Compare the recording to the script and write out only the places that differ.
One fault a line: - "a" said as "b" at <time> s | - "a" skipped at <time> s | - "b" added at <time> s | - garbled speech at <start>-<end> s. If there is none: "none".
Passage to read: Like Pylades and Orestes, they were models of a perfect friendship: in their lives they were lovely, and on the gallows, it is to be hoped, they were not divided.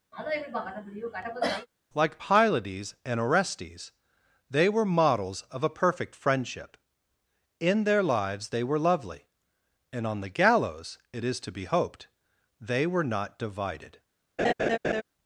none